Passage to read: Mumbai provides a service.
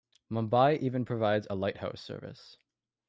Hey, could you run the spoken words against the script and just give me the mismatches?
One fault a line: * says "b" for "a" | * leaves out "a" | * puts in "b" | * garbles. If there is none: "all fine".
* puts in "even"
* puts in "lighthouse"